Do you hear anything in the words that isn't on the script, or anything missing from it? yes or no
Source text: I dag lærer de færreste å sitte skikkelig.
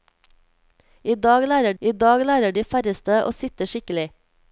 yes